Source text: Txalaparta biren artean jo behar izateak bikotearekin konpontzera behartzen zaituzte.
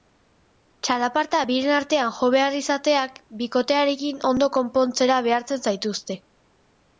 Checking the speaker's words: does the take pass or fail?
fail